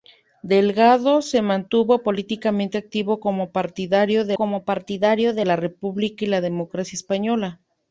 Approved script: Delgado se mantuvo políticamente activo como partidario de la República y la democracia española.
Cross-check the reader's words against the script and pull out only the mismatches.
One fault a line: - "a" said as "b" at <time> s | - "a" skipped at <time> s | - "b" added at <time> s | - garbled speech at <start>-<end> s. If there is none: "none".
- "como partidario de" added at 4.3 s